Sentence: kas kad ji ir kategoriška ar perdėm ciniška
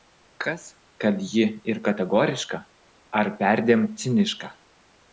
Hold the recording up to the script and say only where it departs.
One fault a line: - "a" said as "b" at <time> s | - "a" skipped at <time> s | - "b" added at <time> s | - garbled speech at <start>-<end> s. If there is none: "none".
none